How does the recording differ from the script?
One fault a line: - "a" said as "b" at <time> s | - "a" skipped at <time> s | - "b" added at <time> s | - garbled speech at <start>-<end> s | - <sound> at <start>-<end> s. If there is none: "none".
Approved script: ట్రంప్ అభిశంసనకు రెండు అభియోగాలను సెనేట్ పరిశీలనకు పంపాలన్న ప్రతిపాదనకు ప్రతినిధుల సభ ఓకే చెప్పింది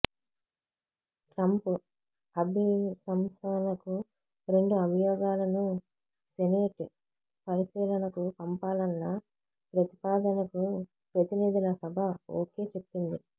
none